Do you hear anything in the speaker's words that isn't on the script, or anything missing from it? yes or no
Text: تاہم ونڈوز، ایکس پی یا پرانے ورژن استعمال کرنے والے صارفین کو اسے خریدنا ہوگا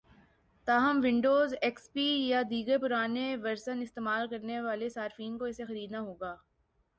yes